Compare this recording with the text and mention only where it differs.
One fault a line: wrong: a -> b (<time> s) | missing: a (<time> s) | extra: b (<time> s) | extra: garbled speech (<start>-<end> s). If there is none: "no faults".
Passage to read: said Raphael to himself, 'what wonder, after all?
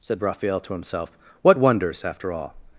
wrong: wonder -> wonders (1.6 s)